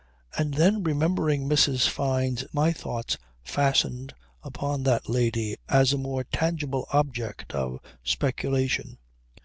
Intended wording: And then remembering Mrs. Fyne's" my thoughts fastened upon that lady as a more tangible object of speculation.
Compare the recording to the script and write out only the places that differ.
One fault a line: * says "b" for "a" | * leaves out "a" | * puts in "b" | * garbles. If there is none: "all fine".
all fine